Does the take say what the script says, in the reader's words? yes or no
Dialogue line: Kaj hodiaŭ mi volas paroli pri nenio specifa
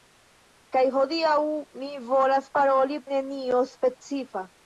no